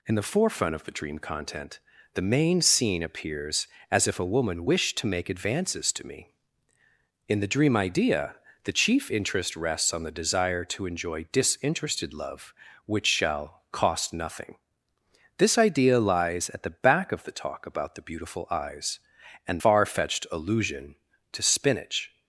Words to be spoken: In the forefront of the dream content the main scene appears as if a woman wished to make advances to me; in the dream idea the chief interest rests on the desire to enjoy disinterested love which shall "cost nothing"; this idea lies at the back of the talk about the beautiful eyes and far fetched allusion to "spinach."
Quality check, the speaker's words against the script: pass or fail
pass